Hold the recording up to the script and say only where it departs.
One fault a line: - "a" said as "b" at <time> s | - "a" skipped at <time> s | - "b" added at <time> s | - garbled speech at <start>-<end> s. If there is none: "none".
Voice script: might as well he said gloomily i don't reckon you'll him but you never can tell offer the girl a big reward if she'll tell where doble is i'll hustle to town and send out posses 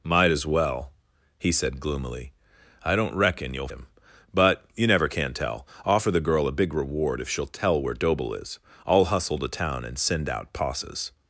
none